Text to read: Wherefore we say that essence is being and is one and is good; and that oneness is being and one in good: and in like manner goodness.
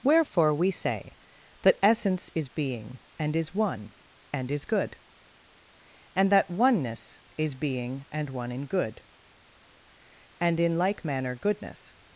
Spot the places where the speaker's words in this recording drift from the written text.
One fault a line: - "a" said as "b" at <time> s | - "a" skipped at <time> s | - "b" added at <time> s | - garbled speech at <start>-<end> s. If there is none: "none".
none